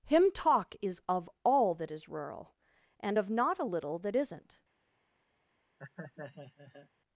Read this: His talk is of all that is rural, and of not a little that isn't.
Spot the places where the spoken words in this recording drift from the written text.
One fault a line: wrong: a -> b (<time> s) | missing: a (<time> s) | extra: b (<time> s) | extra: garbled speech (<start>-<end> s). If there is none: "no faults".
wrong: His -> Him (0.0 s)